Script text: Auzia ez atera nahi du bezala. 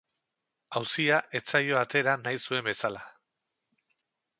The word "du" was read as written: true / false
false